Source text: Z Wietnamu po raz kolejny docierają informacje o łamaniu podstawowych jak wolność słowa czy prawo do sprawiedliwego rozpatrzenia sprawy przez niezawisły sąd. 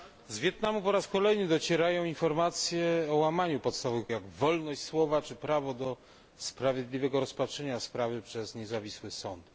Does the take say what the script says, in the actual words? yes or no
yes